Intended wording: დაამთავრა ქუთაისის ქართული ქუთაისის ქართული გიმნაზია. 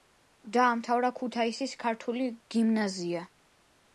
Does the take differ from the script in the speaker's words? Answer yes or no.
yes